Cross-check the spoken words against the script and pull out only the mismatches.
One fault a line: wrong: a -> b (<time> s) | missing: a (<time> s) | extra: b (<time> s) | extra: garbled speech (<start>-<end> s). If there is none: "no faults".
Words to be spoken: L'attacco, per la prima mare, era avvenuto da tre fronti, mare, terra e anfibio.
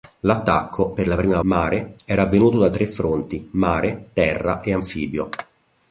no faults